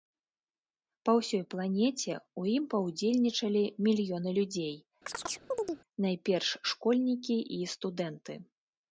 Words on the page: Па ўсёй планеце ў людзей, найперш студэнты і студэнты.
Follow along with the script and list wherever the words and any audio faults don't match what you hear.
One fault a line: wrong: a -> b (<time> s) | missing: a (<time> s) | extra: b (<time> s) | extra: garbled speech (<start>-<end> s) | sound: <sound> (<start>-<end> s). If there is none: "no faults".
extra: ім паўдзельнічалі мільёны (2.5 s)
sound: chirp (5.1-5.8 s)
wrong: студэнты -> школьнікі (6.8 s)